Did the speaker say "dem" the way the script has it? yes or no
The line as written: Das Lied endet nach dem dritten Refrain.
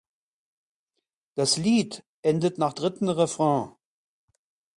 no